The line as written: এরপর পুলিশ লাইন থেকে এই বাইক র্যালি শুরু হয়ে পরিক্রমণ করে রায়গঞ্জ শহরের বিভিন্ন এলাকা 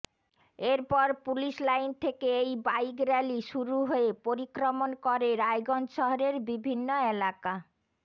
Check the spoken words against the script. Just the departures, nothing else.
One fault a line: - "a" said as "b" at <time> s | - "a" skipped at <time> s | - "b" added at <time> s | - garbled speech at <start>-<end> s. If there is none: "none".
none